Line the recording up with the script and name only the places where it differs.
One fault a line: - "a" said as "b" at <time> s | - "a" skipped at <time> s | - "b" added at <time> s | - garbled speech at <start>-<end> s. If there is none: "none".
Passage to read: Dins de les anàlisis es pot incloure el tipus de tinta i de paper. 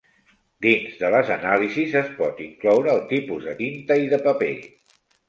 none